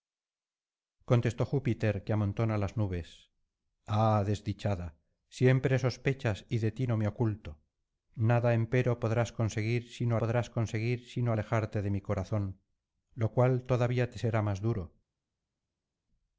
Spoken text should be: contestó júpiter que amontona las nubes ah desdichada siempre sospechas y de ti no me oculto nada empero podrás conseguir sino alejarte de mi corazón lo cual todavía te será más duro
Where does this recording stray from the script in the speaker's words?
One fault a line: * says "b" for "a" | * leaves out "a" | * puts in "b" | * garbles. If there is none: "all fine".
* puts in "podrás conseguir sino"